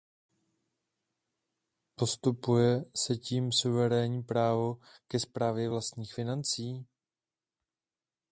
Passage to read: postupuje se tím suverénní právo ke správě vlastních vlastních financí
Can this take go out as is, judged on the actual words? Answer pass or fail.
fail